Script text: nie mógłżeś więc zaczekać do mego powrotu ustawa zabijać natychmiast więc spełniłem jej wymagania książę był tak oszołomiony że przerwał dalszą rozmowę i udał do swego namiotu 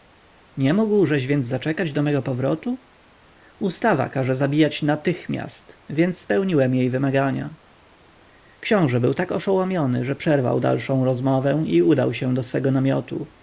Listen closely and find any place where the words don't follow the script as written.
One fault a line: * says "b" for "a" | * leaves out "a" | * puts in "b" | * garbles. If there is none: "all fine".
* puts in "każe"
* puts in "się"